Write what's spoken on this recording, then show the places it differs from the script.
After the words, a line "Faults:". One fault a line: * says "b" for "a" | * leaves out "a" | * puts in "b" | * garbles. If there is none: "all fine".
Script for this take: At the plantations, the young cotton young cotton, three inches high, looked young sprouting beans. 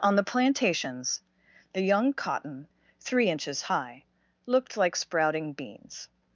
On the plantations, the young cotton, three inches high, looked like sprouting beans.
Faults:
* says "On" for "At"
* leaves out "young cotton"
* says "like" for "young"